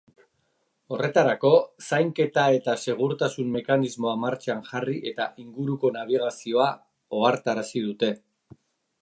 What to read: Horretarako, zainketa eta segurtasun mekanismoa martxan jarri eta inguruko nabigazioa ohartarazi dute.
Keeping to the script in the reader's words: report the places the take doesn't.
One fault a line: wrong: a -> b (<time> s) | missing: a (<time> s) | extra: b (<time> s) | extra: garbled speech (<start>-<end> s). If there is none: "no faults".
no faults